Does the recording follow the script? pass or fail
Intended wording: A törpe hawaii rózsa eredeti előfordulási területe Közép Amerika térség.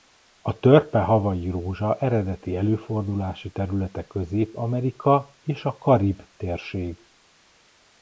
fail